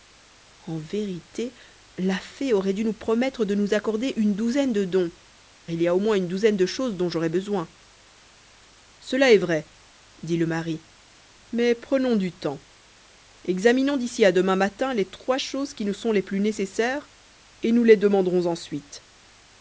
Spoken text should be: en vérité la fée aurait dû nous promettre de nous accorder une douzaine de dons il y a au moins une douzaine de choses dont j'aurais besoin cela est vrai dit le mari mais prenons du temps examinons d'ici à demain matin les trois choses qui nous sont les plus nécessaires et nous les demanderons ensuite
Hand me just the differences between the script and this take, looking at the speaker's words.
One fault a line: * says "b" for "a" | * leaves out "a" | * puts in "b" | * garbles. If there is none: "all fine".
all fine